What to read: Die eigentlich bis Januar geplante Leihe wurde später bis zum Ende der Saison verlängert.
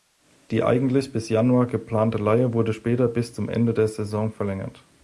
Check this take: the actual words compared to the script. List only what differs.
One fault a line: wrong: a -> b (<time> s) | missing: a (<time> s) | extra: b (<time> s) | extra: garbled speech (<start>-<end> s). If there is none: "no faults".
no faults